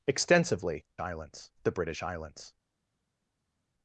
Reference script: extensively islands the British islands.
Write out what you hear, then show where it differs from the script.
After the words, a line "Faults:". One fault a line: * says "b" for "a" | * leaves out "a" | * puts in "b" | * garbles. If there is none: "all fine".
extensively islands the British islands.
Faults:
all fine